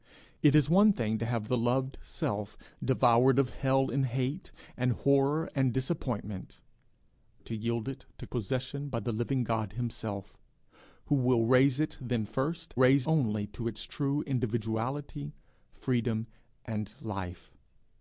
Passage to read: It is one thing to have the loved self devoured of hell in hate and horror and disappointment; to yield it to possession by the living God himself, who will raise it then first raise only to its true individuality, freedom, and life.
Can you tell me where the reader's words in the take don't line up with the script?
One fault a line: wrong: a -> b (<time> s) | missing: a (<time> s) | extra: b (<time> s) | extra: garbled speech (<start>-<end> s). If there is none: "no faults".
no faults